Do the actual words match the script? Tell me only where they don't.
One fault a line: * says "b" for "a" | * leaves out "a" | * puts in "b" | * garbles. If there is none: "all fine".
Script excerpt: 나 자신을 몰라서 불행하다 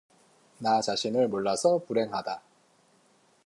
all fine